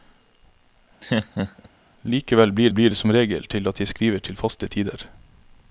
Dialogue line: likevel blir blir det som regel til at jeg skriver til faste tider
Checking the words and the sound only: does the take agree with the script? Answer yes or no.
no